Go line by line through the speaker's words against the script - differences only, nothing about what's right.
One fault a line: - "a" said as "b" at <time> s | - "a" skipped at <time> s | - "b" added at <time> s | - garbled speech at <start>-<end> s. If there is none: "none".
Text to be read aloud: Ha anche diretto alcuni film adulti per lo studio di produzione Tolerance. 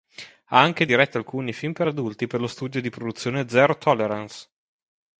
- "per" added at 1.7 s
- "Zero" added at 3.5 s